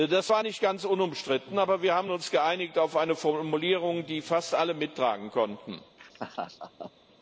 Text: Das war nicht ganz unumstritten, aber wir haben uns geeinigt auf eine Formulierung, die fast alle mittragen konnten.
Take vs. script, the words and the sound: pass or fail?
fail